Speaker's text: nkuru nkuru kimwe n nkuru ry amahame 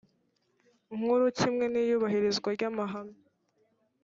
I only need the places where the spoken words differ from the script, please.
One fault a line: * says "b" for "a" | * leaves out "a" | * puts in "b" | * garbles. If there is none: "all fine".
* leaves out "nkuru"
* says "iyubahirizwa" for "nkuru"